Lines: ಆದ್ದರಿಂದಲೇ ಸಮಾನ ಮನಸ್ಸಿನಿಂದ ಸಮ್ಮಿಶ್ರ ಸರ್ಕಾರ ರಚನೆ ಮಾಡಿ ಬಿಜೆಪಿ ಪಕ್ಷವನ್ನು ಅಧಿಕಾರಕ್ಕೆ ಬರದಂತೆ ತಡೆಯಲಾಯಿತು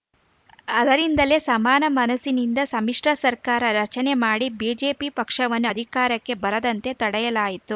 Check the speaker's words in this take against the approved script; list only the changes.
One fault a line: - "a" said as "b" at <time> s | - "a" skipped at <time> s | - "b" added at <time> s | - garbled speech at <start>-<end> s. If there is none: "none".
none